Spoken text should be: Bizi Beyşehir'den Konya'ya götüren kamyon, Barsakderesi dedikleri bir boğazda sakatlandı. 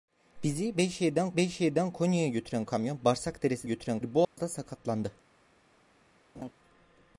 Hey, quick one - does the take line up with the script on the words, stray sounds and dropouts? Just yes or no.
no